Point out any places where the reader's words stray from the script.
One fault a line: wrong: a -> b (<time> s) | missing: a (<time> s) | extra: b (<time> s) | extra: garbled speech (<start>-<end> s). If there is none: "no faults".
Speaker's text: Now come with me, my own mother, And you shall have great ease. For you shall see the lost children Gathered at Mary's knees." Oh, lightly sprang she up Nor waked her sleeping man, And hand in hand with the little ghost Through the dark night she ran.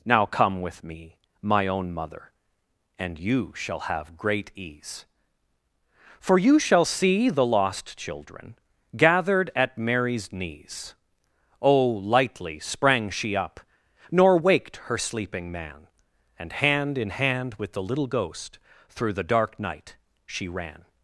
no faults